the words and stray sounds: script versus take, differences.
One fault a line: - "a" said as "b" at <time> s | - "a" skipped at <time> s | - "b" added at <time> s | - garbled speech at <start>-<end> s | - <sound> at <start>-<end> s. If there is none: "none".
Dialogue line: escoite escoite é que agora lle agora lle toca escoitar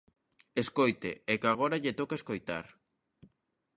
- "escoite" skipped at 1.1 s
- "agora lle" skipped at 2.0 s